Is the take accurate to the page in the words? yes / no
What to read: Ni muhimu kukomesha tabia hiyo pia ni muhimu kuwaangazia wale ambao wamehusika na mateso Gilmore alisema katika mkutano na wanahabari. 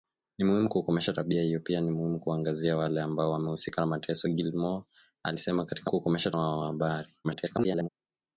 no